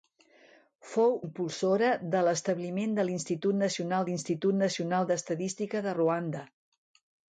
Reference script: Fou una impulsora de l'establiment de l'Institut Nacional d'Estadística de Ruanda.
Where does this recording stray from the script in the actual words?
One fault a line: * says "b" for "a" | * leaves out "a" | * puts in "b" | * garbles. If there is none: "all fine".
* leaves out "una"
* puts in "l'Institut Nacional"